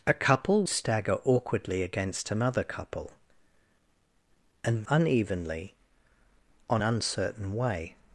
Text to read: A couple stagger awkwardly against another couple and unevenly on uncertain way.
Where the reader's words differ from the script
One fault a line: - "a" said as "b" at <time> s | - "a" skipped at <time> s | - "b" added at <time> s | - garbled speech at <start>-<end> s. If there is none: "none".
none